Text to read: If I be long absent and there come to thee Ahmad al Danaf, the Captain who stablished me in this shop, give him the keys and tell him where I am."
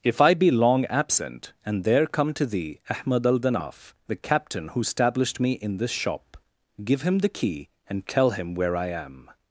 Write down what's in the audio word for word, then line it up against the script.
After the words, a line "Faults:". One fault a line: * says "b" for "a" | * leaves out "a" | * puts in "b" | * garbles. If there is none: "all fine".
If I be long absent and there come to thee Ahmad al Danaf, the Captain who stablished me in this shop, give him the key and tell him where I am."
Faults:
* says "key" for "keys"